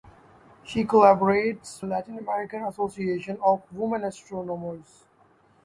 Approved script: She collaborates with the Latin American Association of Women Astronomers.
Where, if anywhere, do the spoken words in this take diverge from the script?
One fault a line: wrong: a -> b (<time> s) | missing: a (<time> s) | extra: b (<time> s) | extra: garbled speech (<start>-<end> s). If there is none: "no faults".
missing: with the (1.9 s)